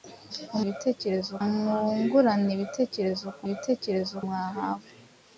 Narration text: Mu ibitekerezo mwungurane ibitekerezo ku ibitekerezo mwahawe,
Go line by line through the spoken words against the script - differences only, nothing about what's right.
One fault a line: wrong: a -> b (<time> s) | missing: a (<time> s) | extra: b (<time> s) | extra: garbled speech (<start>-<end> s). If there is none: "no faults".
no faults